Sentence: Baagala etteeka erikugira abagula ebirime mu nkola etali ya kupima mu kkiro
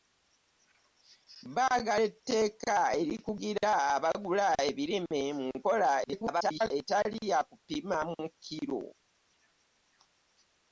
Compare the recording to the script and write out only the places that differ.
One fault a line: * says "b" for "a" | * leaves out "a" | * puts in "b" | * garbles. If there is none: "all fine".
* garbles